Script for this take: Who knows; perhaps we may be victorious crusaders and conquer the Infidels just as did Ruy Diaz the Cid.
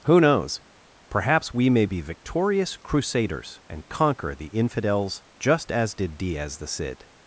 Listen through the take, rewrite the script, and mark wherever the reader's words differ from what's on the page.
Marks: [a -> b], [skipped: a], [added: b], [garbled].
Who knows; perhaps we may be victorious crusaders and conquer the Infidels just as did [skipped: Ruy] Diaz the Cid.